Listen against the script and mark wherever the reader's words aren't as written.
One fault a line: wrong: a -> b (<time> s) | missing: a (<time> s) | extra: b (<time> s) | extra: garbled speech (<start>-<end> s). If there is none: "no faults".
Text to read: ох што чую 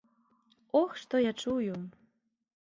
extra: я (1.2 s)